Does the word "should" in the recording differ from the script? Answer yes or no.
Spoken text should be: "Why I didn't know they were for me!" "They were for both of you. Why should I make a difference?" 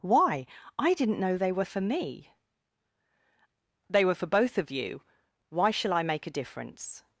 yes